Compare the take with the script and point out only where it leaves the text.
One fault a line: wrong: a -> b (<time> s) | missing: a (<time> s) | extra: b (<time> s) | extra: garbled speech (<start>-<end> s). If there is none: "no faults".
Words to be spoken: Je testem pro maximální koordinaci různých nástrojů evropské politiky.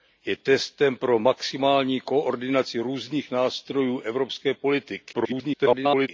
extra: garbled speech (5.1-6.1 s)